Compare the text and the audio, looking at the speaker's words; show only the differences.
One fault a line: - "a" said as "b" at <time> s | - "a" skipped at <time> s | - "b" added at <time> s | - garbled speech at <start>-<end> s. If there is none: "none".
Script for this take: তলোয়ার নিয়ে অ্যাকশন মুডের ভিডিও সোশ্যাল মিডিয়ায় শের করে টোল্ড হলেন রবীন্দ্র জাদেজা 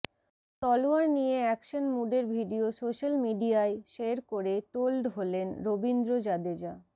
none